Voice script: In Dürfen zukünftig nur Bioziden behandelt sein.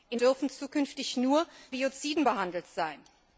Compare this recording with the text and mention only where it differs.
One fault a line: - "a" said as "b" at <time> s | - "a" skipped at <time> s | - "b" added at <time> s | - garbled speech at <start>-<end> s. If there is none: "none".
none